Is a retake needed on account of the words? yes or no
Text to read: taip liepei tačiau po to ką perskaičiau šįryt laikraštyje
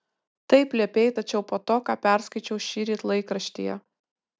no